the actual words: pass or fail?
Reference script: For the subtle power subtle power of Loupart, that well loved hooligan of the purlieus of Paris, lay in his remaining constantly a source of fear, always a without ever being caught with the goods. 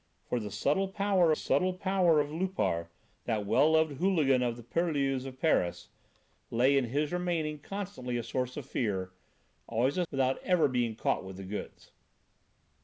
pass